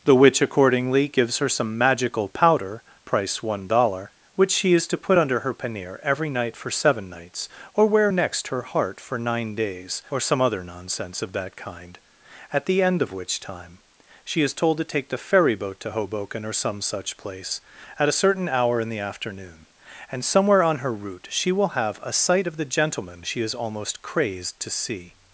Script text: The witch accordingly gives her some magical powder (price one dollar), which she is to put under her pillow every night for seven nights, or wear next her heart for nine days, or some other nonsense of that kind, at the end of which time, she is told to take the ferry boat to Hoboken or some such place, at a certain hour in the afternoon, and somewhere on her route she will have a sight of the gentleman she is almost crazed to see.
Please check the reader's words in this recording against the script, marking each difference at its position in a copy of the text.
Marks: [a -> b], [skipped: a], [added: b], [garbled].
The witch accordingly gives her some magical powder (price one dollar), which she is to put under her [pillow -> pannier] every night for seven nights, or wear next her heart for nine days, or some other nonsense of that kind, at the end of which time, she is told to take the ferry boat to Hoboken or some such place, at a certain hour in the afternoon, and somewhere on her route she will have a sight of the gentleman she is almost crazed to see.